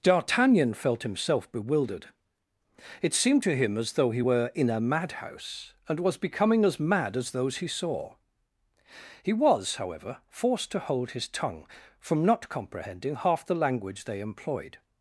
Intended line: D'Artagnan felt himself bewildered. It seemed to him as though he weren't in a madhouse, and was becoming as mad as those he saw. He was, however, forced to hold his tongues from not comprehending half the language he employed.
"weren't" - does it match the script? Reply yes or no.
no